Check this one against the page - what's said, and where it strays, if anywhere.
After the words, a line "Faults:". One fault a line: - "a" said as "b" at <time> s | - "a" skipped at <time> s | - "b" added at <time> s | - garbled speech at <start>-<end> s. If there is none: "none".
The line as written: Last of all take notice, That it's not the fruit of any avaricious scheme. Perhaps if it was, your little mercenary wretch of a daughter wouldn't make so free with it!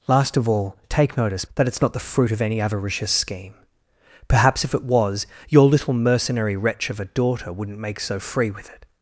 Last of all take notice, That it's not the fruit of any avaricious scheme. Perhaps if it was, your little mercenary wretch of a daughter wouldn't make so free with it!
Faults:
none